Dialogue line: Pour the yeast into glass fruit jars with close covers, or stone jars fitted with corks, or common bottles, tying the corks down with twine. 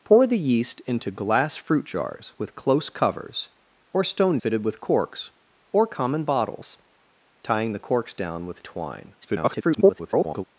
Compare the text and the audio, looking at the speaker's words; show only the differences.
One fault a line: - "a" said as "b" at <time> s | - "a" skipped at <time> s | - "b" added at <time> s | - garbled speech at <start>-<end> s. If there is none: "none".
- "jars" skipped at 4.4 s
- garbled speech at 9.2-10.4 s